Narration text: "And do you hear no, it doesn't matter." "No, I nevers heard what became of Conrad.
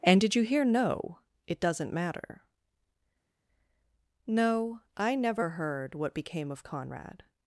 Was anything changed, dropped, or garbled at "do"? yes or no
yes